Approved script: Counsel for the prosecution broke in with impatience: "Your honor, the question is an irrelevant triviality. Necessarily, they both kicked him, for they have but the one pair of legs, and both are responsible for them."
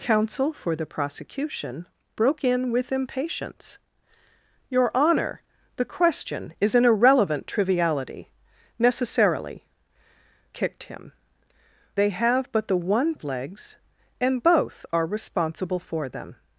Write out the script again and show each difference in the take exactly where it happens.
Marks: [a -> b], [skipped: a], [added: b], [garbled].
Counsel for the prosecution broke in with impatience: "Your honor, the question is an irrelevant triviality. Necessarily, [skipped: they both] kicked him, [skipped: for] they have but the one [skipped: pair] of legs, and both are responsible for them."